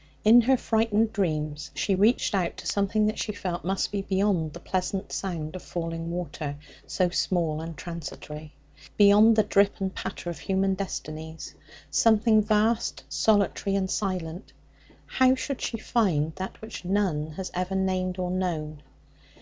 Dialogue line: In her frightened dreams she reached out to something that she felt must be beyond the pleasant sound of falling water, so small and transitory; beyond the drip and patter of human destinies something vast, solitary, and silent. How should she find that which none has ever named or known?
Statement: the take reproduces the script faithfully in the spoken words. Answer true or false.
true